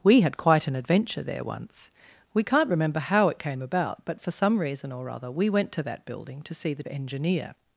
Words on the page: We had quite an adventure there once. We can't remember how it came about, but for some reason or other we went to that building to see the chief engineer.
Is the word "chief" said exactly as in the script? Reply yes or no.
no